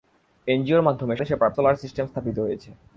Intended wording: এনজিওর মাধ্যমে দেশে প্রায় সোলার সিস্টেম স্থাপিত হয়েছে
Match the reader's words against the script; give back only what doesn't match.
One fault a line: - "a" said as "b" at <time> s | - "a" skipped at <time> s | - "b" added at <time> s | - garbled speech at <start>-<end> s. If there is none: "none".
none